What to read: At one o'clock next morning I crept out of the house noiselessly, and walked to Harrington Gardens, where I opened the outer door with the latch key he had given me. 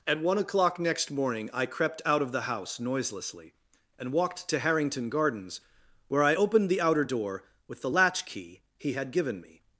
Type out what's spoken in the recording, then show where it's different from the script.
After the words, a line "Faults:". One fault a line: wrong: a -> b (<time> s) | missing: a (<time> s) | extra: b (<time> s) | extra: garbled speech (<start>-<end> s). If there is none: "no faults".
At one o'clock next morning I crept out of the house noiselessly, and walked to Harrington Gardens, where I opened the outer door with the latch key he had given me.
Faults:
no faults